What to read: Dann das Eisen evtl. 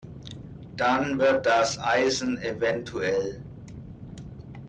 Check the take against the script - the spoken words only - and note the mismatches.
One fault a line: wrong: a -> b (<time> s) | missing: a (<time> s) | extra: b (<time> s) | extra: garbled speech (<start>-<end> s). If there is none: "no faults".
extra: wird (1.2 s)